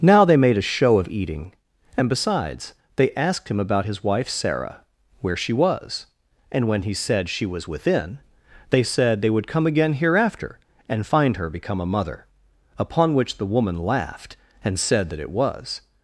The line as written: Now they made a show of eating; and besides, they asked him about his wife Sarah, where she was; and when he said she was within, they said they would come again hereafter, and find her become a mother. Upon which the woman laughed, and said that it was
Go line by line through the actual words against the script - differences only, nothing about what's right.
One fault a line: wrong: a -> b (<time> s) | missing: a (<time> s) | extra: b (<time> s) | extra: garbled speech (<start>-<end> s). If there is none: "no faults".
no faults